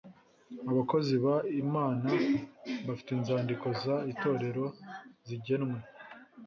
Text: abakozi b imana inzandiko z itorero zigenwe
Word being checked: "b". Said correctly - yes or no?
yes